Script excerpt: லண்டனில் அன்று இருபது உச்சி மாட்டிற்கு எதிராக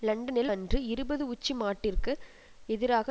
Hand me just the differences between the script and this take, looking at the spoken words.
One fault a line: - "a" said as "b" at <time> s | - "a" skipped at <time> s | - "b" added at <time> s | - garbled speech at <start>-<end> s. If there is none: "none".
none